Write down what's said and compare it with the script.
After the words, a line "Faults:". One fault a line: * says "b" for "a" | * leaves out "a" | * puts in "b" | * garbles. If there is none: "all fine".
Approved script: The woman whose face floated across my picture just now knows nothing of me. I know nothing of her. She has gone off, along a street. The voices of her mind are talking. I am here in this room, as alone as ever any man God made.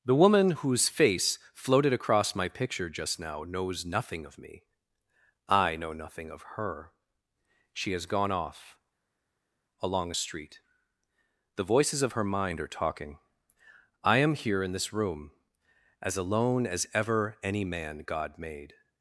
The woman whose face floated across my picture just now knows nothing of me. I know nothing of her. She has gone off, along a street. The voices of her mind are talking. I am here in this room, as alone as ever any man God made.
Faults:
all fine